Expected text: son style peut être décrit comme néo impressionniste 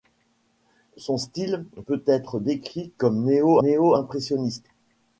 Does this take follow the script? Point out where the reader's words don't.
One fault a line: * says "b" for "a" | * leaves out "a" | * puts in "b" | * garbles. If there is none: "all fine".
* puts in "néo"